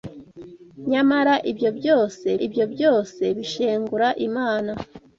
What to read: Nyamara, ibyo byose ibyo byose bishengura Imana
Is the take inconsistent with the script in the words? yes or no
no